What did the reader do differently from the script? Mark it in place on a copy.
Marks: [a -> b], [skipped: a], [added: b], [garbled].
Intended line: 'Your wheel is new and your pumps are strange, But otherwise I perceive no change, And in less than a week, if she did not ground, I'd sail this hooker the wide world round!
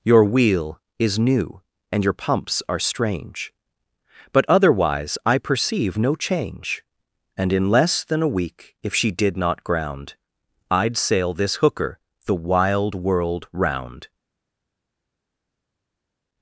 'Your wheel is new and your pumps are strange, But otherwise I perceive no change, And in less than a week, if she did not ground, I'd sail this hooker the [wide -> wild] world round!